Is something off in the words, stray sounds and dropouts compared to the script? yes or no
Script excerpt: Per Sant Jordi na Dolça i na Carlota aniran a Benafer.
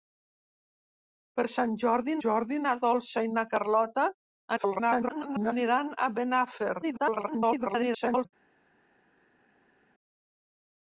yes